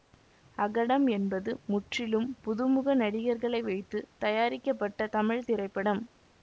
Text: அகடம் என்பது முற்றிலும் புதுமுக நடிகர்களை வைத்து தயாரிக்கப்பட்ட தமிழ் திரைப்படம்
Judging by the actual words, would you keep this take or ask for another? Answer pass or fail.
pass